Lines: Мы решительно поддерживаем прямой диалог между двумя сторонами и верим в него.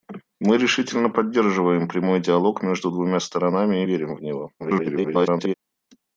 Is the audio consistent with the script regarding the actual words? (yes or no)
no